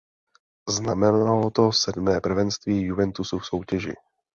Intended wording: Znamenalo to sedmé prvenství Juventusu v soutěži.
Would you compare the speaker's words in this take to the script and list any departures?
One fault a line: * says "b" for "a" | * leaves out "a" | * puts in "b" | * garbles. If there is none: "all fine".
all fine